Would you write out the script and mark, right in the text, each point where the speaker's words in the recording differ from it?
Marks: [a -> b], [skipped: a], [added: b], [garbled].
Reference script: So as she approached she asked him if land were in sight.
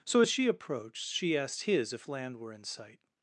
So as she approached she asked [him -> his] if land were in sight.